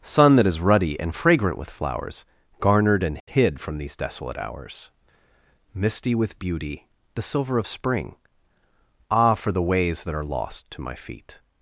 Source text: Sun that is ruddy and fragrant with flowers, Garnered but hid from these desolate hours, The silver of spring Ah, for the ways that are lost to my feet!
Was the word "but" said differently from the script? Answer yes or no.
yes